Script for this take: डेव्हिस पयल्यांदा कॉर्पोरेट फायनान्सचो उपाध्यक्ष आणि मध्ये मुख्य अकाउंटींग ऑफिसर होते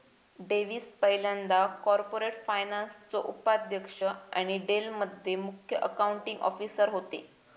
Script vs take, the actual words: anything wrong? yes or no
yes